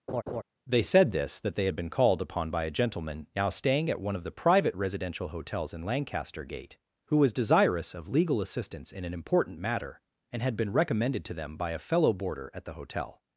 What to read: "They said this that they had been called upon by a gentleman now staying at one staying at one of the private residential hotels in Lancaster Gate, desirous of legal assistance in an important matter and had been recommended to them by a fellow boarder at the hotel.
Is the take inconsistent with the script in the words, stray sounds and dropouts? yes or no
yes